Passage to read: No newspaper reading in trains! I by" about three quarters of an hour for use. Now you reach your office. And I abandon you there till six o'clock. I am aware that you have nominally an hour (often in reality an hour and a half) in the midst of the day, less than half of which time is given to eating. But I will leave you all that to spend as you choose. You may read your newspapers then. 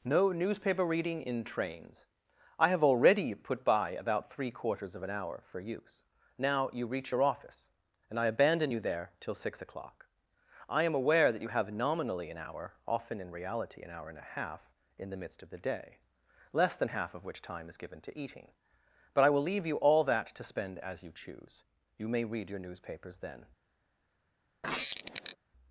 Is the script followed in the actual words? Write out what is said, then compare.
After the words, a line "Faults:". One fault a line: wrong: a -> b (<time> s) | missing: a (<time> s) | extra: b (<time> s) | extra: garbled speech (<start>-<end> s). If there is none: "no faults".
No newspaper reading in trains! I have already "put by" about three quarters of an hour for use. Now you reach your office. And I abandon you there till six o'clock. I am aware that you have nominally an hour (often in reality an hour and a half) in the midst of the day, less than half of which time is given to eating. But I will leave you all that to spend as you choose. You may read your newspapers then.
Faults:
extra: have already put (2.7 s)